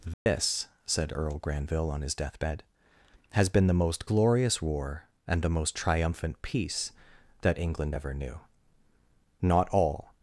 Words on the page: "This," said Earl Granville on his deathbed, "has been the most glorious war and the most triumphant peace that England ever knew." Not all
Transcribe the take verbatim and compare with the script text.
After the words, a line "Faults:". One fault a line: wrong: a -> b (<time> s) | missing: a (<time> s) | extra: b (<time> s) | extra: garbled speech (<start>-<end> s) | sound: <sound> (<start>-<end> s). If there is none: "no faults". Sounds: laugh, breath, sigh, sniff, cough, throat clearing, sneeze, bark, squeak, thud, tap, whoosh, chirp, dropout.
"This," said Earl Granville on his deathbed, "has been the most glorious war and the most triumphant peace that England ever knew." Not all
Faults:
sound: dropout (0.1-0.3 s)